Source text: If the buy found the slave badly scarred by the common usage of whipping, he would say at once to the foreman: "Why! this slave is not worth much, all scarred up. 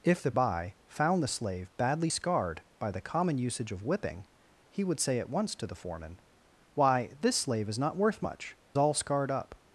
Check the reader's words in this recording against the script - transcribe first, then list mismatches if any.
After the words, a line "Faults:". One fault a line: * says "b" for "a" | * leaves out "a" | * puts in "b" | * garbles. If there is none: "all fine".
If the buy found the slave badly scarred by the common usage of whipping, he would say at once to the foreman: "Why! this slave is not worth much, all scarred up.
Faults:
all fine